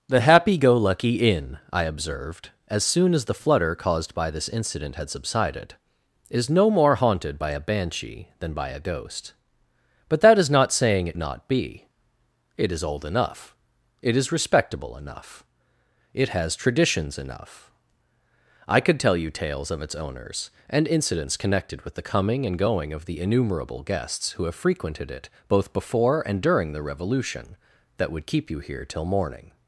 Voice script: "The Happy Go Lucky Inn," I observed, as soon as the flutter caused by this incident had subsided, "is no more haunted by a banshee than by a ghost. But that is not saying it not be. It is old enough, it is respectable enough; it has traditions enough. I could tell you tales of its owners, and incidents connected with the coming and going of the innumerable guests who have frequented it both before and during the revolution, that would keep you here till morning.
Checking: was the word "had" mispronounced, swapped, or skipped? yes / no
no